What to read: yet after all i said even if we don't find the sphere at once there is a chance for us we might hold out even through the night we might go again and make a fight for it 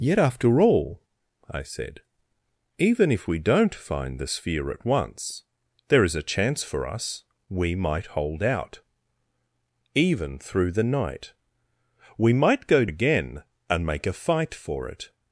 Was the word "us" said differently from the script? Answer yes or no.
no